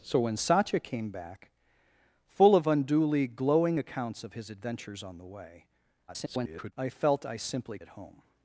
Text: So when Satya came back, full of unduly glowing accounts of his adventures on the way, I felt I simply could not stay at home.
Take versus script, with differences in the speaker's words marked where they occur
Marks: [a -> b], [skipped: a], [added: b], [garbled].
So when Satya came back, full of unduly glowing accounts of his adventures on the way, [garbled] I felt I simply [skipped: could not stay] at home.